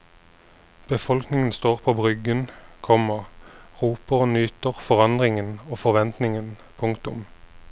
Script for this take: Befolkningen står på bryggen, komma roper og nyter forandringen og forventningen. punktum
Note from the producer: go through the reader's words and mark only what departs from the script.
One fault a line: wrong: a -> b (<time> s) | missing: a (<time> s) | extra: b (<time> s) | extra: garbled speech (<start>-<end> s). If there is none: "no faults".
no faults